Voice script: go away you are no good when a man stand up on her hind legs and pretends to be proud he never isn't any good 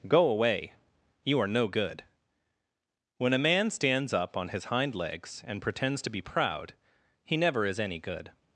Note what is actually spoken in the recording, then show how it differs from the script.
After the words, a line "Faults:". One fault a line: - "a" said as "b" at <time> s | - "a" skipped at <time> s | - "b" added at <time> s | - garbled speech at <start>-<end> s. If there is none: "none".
go away you are no good when a man stands up on his hind legs and pretends to be proud he never is any good
Faults:
- "stand" said as "stands" at 3.7 s
- "her" said as "his" at 4.5 s
- "isn't" said as "is" at 7.7 s